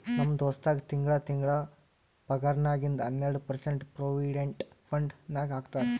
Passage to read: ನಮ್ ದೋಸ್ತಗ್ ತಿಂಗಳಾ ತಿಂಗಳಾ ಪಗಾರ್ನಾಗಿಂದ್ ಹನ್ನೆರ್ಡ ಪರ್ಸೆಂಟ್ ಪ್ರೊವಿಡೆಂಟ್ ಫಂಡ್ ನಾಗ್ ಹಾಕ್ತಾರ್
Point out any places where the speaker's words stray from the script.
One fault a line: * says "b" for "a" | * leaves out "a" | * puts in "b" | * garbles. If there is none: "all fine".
all fine